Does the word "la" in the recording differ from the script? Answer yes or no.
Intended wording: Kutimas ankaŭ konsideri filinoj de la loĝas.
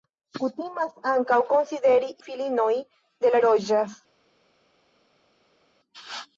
no